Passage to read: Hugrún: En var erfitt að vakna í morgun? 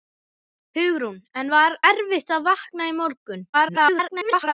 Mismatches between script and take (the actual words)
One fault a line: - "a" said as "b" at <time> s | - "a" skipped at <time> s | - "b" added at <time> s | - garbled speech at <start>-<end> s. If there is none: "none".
- garbled speech at 3.5-4.5 s